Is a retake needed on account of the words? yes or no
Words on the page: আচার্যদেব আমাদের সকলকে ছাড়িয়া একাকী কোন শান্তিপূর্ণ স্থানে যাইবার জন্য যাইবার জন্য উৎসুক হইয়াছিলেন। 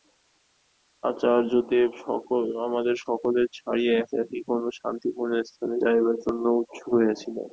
yes